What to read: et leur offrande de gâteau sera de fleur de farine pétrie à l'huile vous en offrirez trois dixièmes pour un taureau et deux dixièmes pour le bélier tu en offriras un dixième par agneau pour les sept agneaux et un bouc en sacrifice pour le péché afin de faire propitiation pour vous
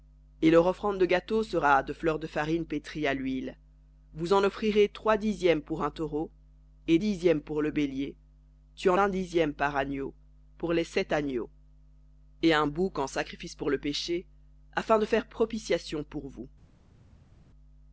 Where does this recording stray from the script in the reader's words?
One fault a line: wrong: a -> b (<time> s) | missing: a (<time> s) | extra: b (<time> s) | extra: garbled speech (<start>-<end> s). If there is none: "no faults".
missing: deux (7.0 s)
missing: offriras (9.0 s)